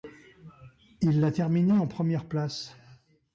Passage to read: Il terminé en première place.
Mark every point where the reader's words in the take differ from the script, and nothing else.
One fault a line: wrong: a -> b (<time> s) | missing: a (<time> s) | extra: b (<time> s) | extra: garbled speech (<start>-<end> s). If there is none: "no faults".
extra: l'a (1.2 s)